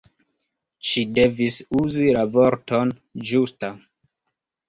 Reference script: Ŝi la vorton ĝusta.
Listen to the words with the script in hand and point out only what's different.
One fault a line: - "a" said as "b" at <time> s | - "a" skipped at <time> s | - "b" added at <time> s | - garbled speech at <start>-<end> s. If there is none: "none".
- "devis uzi" added at 1.2 s